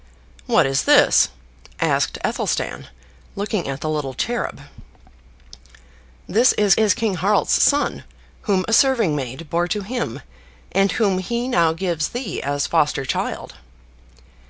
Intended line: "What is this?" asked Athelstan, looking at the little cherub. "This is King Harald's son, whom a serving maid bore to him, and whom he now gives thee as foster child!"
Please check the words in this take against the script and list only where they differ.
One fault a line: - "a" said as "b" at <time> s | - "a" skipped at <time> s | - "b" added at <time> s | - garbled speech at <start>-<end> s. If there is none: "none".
- "is" added at 6.7 s